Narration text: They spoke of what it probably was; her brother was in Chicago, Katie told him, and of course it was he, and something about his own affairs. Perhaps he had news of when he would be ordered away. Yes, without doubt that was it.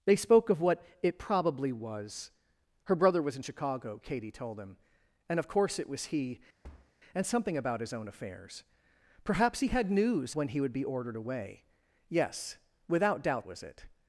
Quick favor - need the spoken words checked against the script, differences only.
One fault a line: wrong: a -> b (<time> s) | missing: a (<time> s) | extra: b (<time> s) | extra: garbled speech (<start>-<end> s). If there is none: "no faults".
missing: of (10.3 s)
missing: that (13.5 s)